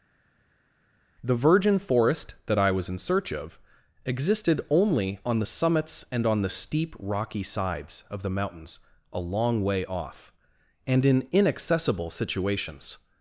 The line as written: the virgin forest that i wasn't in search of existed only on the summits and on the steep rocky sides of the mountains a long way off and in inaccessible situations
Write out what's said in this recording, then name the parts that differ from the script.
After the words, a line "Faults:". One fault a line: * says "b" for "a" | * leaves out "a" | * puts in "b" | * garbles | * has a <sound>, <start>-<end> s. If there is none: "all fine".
the virgin forest that i was in search of existed only on the summits and on the steep rocky sides of the mountains a long way off and in inaccessible situations
Faults:
* says "was" for "wasn't"